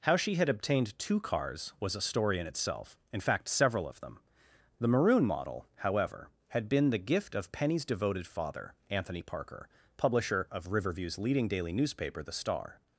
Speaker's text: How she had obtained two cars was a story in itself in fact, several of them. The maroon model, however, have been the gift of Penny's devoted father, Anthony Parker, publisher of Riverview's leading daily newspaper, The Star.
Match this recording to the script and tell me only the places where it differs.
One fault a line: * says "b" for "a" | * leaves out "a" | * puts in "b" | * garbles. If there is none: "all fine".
* says "had" for "have"